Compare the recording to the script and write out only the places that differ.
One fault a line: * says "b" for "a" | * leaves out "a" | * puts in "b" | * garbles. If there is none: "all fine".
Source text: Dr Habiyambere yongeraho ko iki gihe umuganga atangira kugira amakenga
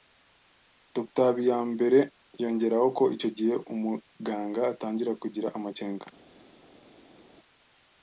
* says "icyo" for "iki"